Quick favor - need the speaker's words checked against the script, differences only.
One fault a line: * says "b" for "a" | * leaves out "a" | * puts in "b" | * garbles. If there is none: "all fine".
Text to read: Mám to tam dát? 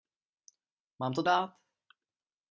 * leaves out "tam"